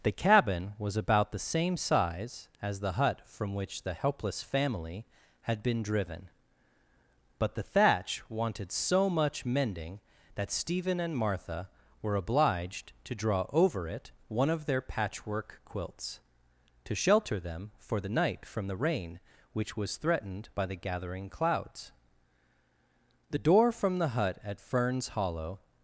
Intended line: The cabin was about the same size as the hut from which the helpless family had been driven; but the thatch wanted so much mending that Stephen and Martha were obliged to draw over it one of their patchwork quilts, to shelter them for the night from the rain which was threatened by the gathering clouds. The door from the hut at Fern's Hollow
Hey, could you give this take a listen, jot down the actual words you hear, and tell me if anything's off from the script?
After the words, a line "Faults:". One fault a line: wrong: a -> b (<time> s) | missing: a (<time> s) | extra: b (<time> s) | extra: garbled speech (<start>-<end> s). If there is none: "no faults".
The cabin was about the same size as the hut from which the helpless family had been driven; but the thatch wanted so much mending that Stephen and Martha were obliged to draw over it one of their patchwork quilts, to shelter them for the night from the rain which was threatened by the gathering clouds. The door from the hut at Fern's Hollow
Faults:
no faults